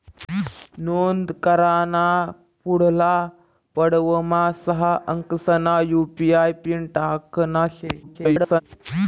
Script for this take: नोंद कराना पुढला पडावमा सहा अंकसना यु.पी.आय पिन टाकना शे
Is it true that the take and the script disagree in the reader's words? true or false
true